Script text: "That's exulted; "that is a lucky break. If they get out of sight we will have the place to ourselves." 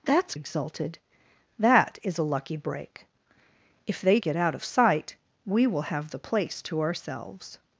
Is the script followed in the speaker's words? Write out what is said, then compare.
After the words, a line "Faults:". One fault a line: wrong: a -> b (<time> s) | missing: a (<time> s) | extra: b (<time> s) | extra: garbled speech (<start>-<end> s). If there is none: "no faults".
"That's exulted; "that is a lucky break. If they get out of sight we will have the place to ourselves."
Faults:
no faults